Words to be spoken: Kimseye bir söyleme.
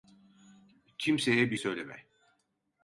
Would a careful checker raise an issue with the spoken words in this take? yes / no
no